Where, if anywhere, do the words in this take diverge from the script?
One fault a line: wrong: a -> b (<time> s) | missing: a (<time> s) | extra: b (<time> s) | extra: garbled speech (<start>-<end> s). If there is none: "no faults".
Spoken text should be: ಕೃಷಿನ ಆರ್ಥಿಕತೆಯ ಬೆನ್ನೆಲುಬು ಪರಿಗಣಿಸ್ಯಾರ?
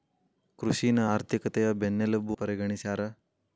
no faults